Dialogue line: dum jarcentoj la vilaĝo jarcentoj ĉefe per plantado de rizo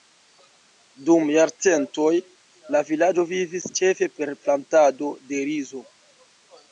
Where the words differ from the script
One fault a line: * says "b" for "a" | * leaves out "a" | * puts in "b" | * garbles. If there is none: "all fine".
* says "vivis" for "jarcentoj"